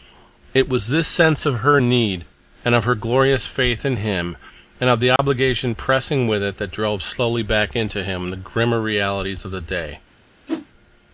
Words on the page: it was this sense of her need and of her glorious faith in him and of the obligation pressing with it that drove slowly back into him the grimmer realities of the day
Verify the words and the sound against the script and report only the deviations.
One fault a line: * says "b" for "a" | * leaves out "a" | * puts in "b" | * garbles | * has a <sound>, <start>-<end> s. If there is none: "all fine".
* has a dropout, 5.2-5.2 s
* has a whoosh, 10.5-10.7 s